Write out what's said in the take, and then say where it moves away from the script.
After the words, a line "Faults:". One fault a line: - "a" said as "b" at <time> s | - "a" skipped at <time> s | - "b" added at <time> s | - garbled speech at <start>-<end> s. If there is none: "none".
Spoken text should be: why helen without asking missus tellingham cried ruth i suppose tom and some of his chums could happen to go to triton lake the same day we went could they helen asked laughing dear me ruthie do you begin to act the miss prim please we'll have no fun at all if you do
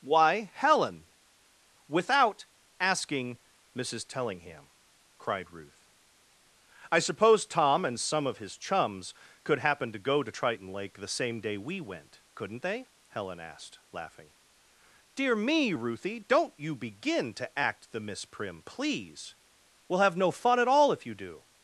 why helen without asking missus tellingham cried ruth i suppose tom and some of his chums could happen to go to triton lake the same day we went couldn't they helen asked laughing dear me ruthie don't you begin to act the miss prim please we'll have no fun at all if you do
Faults:
- "could" said as "couldn't" at 12.4 s
- "do" said as "don't" at 16.2 s